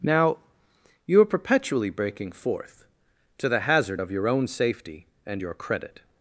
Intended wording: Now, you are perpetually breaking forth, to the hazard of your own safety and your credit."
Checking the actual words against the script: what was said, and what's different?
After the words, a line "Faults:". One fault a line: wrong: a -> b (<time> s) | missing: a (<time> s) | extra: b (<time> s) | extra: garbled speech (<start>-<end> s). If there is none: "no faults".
Now, you are perpetually breaking forth, to the hazard of your own safety and your credit."
Faults:
no faults